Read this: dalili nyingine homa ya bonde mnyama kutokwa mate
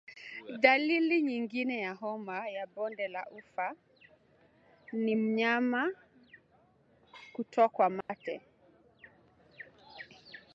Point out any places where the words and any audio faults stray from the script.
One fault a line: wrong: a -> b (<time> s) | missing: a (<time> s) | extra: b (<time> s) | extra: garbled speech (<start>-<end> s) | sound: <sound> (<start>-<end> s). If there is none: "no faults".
extra: ya (1.8 s)
extra: la ufa ni (3.1 s)
sound: dropout (8.0-8.1 s)